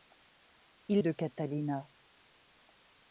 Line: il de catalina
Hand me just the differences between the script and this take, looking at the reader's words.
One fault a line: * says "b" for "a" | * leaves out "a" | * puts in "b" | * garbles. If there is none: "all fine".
all fine